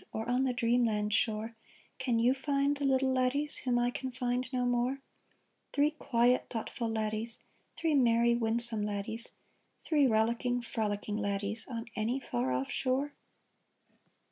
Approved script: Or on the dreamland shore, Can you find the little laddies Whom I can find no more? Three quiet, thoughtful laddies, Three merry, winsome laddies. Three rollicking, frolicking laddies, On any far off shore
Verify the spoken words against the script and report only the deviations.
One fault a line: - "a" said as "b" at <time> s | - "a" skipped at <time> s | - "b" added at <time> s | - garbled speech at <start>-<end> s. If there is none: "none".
none